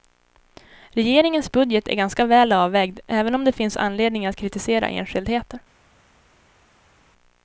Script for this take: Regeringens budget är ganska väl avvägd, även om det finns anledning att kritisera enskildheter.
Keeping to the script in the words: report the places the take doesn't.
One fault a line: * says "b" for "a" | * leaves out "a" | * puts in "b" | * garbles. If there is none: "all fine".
all fine